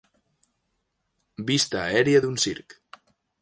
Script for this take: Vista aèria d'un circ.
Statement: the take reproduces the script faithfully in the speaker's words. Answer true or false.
true